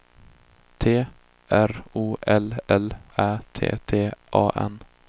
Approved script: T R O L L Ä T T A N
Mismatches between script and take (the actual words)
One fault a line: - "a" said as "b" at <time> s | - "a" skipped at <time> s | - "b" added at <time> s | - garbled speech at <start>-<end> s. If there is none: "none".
none